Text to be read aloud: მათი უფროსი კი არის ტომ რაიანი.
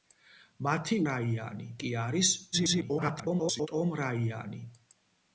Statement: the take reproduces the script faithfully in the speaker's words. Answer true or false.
false